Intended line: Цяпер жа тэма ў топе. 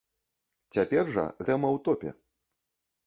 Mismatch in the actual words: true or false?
false